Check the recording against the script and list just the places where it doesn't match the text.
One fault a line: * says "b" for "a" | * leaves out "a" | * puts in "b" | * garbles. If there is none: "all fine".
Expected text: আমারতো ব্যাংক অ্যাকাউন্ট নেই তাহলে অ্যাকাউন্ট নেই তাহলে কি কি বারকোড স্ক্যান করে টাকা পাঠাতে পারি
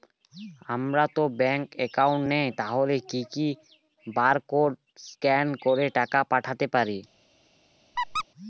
* leaves out "অ্যাকাউন্ট নেই তাহলে"